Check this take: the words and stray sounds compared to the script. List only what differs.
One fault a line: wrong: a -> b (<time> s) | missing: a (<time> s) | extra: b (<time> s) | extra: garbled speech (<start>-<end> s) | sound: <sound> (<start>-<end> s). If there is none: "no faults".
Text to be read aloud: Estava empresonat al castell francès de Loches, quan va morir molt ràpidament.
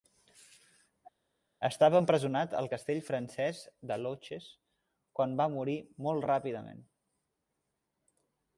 no faults